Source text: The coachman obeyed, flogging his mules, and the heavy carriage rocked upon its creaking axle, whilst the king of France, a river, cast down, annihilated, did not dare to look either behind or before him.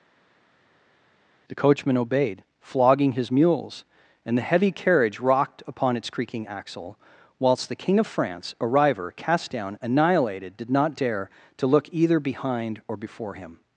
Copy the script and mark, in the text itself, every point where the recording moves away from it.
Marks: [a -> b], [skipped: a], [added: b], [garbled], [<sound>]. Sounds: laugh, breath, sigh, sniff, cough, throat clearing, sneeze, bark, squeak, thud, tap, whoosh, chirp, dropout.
The coachman obeyed, flogging his mules, and the heavy carriage rocked upon its creaking axle, whilst the king of France, a river, cast down, annihilated, did not dare to look either behind or before him.